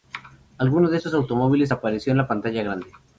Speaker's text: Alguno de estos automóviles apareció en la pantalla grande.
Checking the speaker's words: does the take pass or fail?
pass